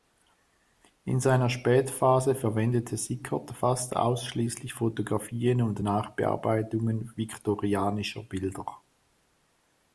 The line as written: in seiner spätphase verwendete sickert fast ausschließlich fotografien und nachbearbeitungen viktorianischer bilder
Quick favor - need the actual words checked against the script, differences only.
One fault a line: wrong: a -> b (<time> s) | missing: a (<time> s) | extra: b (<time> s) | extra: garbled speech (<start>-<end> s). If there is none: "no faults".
no faults